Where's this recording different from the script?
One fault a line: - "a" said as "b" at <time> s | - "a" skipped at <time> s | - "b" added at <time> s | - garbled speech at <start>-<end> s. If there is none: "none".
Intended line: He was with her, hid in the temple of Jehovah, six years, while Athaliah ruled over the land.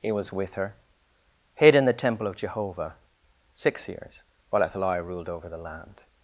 none